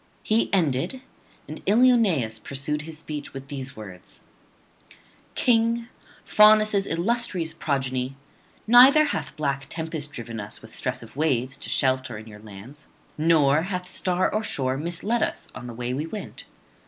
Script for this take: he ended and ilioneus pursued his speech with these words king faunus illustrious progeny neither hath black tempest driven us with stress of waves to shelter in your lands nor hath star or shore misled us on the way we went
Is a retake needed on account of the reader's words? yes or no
no